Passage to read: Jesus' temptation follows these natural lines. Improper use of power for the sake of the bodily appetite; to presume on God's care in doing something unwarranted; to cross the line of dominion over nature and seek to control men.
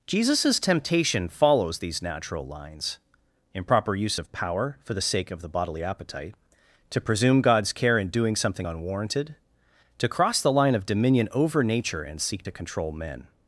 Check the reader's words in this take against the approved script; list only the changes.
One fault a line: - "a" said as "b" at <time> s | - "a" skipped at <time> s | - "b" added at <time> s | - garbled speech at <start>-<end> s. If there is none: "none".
- "on" skipped at 7.4 s